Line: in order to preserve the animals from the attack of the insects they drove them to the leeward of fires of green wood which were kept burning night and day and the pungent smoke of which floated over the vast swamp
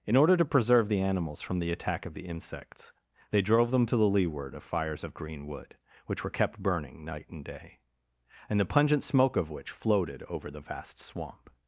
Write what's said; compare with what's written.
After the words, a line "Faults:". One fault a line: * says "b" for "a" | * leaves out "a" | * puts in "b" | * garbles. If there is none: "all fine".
in order to preserve the animals from the attack of the insects they drove them to the leeward of fires of green wood which were kept burning night and day and the pungent smoke of which floated over the vast swamp
Faults:
all fine